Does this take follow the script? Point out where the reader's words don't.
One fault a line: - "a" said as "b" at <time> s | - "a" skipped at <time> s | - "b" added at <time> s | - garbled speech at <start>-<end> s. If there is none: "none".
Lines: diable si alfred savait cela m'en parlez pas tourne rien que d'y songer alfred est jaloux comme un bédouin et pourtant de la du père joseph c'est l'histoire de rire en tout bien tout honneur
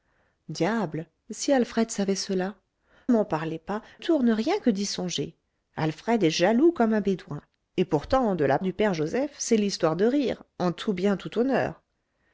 none